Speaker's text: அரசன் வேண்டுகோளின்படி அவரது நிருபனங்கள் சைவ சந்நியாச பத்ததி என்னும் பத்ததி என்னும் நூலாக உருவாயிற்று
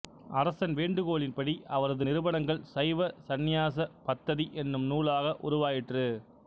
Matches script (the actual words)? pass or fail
fail